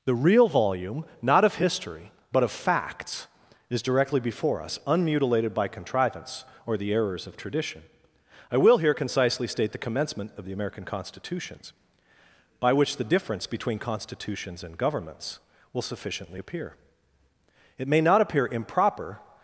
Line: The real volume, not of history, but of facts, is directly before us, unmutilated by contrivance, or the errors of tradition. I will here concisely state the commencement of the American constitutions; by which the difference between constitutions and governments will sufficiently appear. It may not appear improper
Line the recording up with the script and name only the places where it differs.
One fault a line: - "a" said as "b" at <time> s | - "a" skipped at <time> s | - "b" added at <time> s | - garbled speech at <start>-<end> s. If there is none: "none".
none